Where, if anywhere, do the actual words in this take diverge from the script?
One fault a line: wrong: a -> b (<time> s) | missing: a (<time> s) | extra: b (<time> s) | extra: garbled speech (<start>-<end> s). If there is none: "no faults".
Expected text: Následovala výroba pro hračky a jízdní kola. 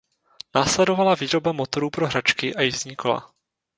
extra: motorů (1.5 s)